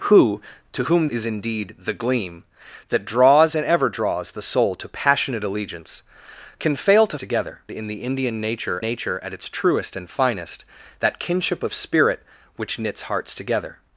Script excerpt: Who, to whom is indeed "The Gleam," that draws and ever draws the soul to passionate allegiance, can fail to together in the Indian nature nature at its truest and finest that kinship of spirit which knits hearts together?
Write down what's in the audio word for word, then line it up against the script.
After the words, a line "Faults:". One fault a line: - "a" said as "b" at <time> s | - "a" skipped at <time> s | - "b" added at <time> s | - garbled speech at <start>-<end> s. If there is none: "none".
Who, to whom is indeed "The Gleam," that draws and ever draws the soul to passionate allegiance, can fail to together in the Indian nature nature at its truest and finest that kinship of spirit which knits hearts together?
Faults:
none